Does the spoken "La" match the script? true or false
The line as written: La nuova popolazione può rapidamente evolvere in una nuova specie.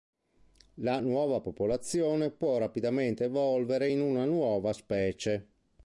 true